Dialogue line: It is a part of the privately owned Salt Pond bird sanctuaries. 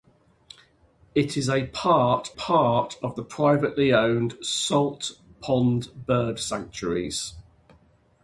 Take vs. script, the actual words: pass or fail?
fail